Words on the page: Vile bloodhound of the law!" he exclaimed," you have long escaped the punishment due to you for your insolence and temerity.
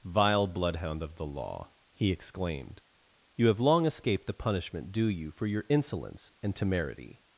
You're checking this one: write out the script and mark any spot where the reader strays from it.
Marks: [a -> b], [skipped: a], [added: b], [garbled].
Vile bloodhound of the law!" he exclaimed," you have long escaped the punishment due [skipped: to] you for your insolence and temerity.